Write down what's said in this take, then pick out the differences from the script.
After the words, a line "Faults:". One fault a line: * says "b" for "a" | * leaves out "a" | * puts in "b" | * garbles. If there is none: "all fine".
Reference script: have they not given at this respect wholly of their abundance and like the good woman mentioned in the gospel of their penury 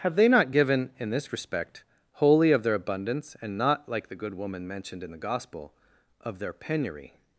have they not given in this respect wholly of their abundance and not like the good woman mentioned in the gospel of their penury
Faults:
* says "in" for "at"
* puts in "not"